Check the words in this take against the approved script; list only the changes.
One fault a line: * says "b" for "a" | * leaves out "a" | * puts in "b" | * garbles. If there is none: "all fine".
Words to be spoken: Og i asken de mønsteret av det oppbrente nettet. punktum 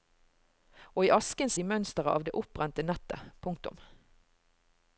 all fine